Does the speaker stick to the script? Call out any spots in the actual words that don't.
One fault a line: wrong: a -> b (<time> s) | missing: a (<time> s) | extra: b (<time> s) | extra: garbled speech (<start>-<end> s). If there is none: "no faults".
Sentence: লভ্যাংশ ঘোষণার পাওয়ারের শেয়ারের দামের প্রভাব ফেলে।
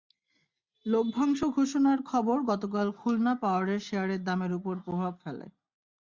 extra: খবর গতকাল খুলনা (2.0 s)
extra: ওপর (4.5 s)